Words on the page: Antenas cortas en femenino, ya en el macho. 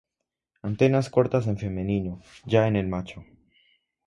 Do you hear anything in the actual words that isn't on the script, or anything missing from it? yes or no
no